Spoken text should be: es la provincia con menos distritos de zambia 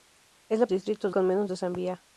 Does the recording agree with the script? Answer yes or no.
no